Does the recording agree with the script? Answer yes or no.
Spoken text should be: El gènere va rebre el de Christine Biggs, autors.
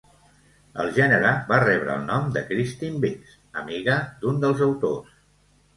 no